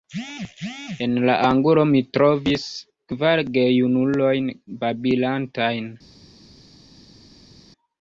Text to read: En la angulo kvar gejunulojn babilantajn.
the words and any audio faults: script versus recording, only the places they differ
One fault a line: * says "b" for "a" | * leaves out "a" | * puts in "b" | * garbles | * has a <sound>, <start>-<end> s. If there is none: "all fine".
* puts in "mi trovis"